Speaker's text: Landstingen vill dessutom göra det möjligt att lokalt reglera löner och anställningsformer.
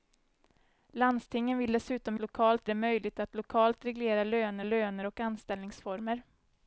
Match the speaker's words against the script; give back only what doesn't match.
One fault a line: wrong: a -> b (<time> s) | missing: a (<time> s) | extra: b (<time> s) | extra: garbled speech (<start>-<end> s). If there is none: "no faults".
wrong: göra -> lokalt (2.2 s)
extra: löner (4.6 s)